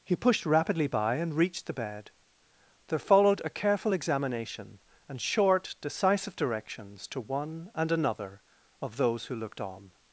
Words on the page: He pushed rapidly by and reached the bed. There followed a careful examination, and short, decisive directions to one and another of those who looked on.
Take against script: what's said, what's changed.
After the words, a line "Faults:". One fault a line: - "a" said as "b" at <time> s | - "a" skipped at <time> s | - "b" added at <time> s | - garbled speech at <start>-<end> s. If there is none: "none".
He pushed rapidly by and reached the bed. There followed a careful examination, and short, decisive directions to one and another of those who looked on.
Faults:
none